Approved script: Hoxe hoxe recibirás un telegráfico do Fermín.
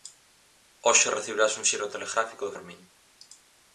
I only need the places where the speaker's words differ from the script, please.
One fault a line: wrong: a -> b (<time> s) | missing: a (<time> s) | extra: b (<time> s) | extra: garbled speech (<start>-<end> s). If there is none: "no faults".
missing: hoxe (1.1 s)
extra: xiro (1.7 s)